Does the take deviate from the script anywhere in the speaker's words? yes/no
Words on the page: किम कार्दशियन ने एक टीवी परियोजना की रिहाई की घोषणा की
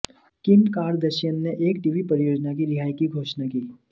no